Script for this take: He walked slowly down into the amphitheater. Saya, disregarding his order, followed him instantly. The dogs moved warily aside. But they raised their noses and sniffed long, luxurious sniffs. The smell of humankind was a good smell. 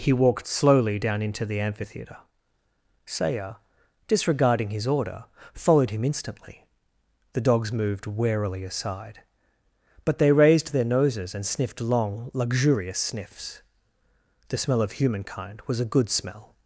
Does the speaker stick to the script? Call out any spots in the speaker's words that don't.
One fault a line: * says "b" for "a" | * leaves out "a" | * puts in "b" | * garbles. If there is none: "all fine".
all fine